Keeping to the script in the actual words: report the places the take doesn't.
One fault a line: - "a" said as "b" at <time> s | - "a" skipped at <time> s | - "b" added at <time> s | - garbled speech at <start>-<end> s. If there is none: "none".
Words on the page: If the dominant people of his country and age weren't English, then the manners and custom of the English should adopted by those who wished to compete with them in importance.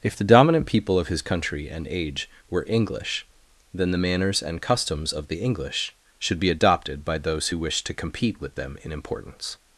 - "weren't" said as "were" at 2.5 s
- "custom" said as "customs" at 4.6 s
- "be" added at 6.4 s